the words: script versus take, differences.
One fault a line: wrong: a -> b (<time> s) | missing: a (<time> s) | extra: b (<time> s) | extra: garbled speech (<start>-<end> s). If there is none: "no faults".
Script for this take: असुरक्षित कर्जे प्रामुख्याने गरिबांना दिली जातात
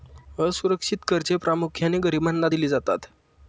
no faults